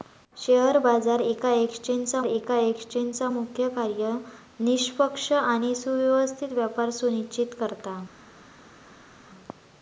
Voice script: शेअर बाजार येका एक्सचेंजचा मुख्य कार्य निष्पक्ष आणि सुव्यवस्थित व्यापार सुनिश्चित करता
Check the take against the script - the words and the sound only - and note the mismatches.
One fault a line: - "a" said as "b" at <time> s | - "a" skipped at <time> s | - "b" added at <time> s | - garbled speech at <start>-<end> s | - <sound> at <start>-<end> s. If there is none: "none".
- "येका एक्सचेंजचा" added at 2.2 s